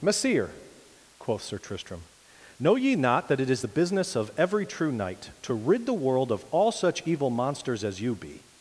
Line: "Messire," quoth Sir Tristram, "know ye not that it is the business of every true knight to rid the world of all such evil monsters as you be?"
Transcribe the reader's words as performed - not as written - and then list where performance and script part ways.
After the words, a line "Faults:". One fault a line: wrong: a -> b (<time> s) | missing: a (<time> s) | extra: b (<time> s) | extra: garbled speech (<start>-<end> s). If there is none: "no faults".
"Messire," quoth Sir Tristram, "know ye not that it is the business of every true knight to rid the world of all such evil monsters as you be?"
Faults:
no faults